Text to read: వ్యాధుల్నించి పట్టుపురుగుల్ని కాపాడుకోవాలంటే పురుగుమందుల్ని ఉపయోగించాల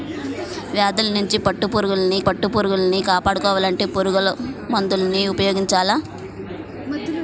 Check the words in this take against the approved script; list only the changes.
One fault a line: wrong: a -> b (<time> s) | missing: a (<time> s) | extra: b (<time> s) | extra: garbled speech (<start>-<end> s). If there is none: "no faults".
extra: పట్టుపురుగుల్ని (2.2 s)